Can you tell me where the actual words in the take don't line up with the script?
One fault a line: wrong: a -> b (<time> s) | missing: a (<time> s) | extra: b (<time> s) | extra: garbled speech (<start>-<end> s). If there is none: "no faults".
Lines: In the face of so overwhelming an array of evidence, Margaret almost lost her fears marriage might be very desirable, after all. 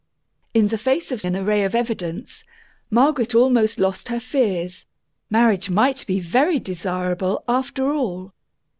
missing: so overwhelming (1.2 s)